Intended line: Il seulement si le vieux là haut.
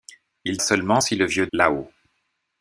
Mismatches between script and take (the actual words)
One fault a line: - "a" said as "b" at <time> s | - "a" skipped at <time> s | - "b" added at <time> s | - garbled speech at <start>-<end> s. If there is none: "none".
none